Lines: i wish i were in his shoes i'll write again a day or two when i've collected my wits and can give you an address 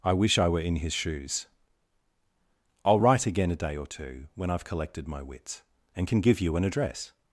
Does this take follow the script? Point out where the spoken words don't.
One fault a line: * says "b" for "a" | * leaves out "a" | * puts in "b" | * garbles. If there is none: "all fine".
all fine